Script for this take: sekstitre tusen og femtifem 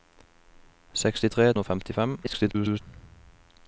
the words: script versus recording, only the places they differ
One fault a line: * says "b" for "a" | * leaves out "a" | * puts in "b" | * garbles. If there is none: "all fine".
* leaves out "tusen"
* garbles